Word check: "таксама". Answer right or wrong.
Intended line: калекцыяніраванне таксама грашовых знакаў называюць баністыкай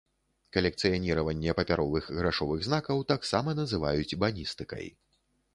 wrong